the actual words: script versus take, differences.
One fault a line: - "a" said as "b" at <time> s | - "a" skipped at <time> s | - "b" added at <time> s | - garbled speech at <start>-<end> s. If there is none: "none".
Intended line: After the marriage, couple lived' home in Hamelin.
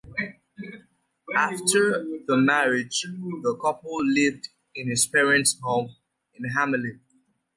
- "the" added at 3.0 s
- "in his parents" added at 4.7 s